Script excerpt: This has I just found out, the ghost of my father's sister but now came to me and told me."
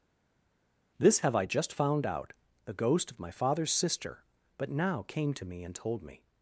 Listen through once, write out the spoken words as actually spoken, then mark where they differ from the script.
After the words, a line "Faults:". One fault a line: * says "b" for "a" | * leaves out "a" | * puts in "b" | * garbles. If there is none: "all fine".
This have I just found out, the ghost of my father's sister but now came to me and told me."
Faults:
* says "have" for "has"